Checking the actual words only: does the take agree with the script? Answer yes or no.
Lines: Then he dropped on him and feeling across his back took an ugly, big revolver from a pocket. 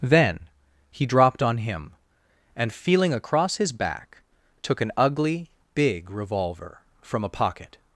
yes